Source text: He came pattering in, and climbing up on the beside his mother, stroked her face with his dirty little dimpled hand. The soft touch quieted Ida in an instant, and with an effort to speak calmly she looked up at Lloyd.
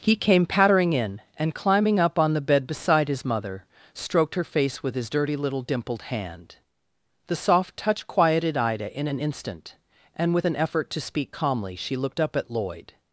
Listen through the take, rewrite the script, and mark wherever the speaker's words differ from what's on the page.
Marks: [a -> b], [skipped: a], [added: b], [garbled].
He came pattering in, and climbing up on the [added: bed] beside his mother, stroked her face with his dirty little dimpled hand. The soft touch quieted Ida in an instant, and with an effort to speak calmly she looked up at Lloyd.